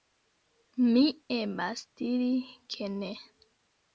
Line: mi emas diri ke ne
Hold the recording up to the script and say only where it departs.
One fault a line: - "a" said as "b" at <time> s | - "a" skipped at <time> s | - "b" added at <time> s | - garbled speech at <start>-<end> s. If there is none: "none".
none